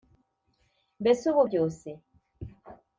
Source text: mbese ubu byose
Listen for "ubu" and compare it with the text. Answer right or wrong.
right